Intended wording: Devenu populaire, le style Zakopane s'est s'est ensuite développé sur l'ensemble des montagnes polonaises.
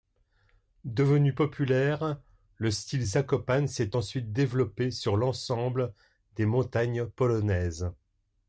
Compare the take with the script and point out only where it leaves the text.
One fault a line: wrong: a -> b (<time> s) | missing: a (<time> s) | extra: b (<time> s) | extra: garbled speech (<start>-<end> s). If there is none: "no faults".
missing: s'est (4.0 s)